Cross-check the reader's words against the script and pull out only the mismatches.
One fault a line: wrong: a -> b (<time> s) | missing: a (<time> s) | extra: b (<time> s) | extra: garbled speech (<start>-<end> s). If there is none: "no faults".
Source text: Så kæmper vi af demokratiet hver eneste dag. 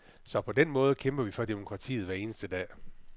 extra: på den måde (0.4 s)
wrong: af -> for (1.3 s)